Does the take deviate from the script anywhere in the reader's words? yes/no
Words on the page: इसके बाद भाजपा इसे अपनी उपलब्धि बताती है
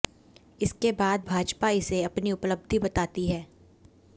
no